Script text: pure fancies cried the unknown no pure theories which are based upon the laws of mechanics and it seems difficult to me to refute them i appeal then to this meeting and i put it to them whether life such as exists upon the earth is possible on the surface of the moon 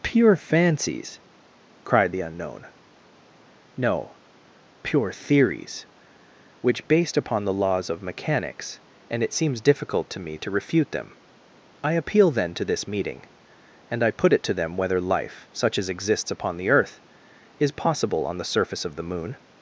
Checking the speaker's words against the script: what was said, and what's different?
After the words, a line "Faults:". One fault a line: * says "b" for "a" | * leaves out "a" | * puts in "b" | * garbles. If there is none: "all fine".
pure fancies cried the unknown no pure theories which based upon the laws of mechanics and it seems difficult to me to refute them i appeal then to this meeting and i put it to them whether life such as exists upon the earth is possible on the surface of the moon
Faults:
* leaves out "are"